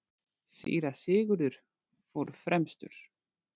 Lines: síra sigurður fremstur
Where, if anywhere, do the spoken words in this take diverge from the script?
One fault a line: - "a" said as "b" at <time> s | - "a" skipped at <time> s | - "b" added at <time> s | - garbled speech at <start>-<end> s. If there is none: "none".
- "fór" added at 2.1 s